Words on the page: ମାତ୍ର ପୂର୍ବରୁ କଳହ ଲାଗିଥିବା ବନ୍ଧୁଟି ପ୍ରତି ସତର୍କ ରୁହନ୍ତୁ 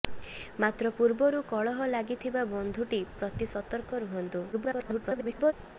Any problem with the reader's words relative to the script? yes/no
yes